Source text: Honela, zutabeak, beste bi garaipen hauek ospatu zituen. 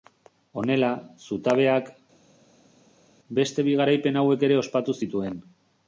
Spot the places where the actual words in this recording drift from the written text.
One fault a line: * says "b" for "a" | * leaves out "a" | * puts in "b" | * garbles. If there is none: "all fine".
* puts in "ere"